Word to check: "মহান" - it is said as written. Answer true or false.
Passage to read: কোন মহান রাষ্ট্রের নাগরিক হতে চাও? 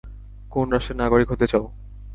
false